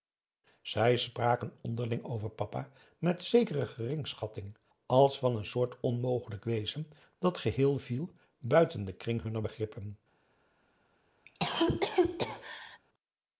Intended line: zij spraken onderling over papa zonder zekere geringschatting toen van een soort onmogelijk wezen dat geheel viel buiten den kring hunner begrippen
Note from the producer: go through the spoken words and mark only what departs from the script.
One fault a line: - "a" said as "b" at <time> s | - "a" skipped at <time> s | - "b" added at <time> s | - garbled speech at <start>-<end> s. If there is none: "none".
- "zonder" said as "met" at 3.0 s
- "toen" said as "als" at 4.8 s